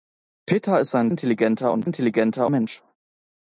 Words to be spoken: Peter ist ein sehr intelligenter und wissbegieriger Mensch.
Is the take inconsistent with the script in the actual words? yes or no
yes